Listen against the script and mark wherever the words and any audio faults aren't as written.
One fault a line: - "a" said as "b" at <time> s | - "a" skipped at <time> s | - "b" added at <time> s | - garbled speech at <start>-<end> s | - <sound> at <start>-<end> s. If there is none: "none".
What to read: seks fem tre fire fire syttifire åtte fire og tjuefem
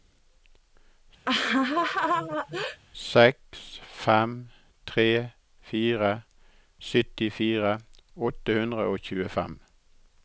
- laugh at 1.2-2.8 s
- "fire" skipped at 6.1 s
- "fire" said as "hundre" at 8.6 s